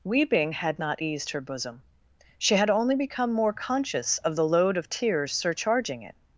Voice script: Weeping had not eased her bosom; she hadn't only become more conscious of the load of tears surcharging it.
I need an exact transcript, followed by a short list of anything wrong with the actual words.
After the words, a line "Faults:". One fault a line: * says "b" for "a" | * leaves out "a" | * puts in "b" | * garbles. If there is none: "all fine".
Weeping had not eased her bosom; she had only become more conscious of the load of tears surcharging it.
Faults:
* says "had" for "hadn't"